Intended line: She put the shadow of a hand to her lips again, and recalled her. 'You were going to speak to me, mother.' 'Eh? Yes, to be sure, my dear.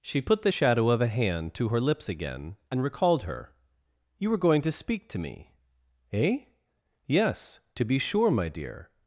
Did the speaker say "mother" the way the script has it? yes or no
no